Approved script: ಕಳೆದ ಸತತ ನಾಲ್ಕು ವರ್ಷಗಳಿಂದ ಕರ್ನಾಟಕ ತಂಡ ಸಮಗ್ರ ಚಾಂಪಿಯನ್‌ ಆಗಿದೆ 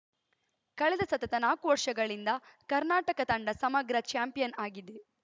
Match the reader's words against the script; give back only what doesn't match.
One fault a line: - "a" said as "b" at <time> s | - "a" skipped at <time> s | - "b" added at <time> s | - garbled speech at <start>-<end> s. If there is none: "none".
none